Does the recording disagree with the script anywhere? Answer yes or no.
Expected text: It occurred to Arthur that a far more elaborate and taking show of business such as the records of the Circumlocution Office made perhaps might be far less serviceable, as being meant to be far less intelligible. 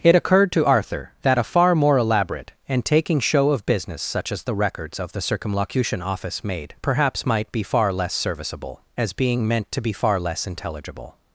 no